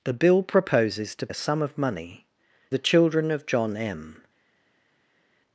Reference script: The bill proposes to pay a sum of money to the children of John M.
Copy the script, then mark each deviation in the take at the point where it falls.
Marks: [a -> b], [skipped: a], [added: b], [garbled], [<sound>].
The bill proposes to [skipped: pay] a sum of money [skipped: to] the children of John M.